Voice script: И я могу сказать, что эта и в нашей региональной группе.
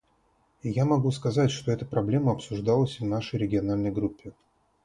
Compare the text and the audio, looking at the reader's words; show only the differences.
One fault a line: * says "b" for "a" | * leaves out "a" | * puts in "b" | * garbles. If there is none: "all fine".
* puts in "проблема обсуждалась"